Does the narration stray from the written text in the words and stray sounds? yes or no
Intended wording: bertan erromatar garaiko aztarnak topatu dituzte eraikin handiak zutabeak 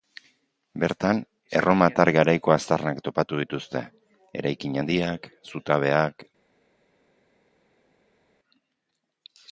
no